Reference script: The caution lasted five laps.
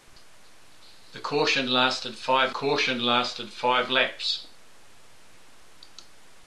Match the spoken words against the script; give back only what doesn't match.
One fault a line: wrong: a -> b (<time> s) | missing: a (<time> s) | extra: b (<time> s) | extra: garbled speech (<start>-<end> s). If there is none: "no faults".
extra: caution lasted five (2.5 s)